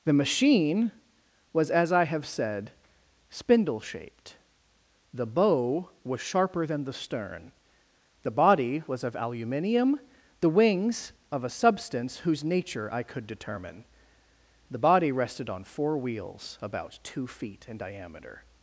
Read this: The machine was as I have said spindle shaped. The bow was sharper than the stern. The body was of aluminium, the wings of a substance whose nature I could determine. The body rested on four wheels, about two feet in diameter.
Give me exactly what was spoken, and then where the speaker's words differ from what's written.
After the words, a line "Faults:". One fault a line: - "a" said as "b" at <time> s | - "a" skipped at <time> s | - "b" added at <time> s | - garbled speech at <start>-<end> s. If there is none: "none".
The machine was as I have said spindle shaped. The bow was sharper than the stern. The body was of aluminium, the wings of a substance whose nature I could determine. The body rested on four wheels, about two feet in diameter.
Faults:
none